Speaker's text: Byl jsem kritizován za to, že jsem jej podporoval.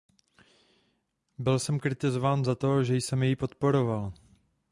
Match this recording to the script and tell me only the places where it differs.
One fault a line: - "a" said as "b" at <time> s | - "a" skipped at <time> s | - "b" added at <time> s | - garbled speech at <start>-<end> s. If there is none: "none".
none